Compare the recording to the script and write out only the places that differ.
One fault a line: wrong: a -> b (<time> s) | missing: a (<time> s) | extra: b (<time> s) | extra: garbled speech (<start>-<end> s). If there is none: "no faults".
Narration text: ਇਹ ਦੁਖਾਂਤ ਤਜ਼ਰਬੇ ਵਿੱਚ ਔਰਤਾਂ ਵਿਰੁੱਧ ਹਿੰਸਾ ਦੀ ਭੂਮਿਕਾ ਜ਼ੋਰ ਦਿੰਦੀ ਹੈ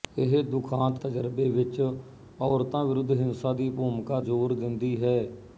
no faults